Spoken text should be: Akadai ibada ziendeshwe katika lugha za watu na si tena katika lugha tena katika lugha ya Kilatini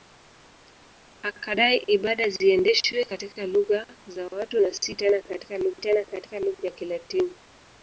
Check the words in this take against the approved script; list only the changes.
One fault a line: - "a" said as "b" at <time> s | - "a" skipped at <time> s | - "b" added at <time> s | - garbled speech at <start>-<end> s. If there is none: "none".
none